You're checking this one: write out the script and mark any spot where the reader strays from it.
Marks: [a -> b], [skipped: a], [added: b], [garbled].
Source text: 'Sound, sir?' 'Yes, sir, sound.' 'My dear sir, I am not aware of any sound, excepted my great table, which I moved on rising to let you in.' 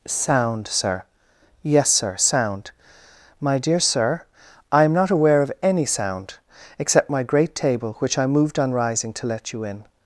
'Sound, sir?' 'Yes, sir, sound.' 'My dear sir, I am not aware of any sound, [excepted -> except] my great table, which I moved on rising to let you in.'